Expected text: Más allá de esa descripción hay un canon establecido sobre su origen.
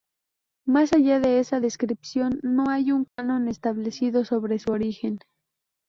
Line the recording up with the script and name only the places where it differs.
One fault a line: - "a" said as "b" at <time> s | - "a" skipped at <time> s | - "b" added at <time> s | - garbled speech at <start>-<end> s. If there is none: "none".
- "no" added at 2.4 s